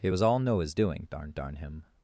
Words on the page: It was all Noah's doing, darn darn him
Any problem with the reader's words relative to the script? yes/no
no